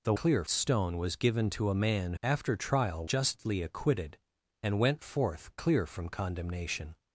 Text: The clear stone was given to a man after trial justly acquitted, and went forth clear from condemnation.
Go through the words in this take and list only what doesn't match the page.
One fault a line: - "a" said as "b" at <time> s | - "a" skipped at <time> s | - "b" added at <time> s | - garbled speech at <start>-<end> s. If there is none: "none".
none